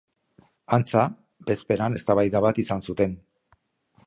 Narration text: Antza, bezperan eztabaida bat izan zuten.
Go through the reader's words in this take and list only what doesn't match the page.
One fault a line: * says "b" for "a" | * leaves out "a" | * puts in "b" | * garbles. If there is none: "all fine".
all fine